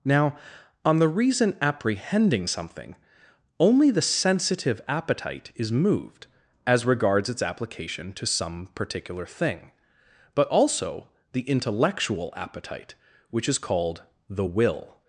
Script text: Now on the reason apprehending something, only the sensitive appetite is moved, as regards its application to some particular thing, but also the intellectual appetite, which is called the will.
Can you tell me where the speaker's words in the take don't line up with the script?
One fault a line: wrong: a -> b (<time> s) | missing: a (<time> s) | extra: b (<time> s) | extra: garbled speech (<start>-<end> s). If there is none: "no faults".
no faults